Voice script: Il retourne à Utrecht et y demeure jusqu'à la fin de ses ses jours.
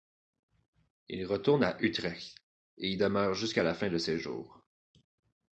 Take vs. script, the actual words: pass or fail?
fail